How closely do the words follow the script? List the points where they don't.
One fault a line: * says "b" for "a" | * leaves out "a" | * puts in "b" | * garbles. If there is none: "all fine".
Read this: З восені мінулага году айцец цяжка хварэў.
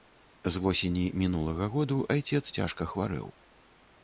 all fine